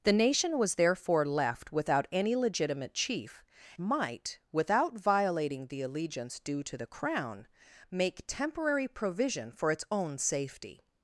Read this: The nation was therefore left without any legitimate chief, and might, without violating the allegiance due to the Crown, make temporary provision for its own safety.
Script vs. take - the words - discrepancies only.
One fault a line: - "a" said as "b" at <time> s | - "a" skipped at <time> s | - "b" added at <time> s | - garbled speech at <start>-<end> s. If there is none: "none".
- "and" skipped at 3.5 s